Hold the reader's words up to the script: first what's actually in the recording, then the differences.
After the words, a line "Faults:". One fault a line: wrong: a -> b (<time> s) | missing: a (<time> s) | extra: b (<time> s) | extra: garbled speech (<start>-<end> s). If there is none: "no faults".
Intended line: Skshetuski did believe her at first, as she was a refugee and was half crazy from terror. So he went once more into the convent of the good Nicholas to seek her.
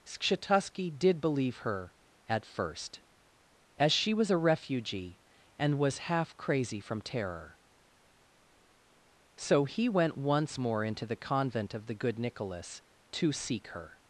Skshetuski did believe her at first, as she was a refugee and was half crazy from terror. So he went once more into the convent of the good Nicholas to seek her.
Faults:
no faults